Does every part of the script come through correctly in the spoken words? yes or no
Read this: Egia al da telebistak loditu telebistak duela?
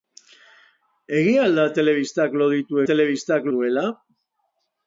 yes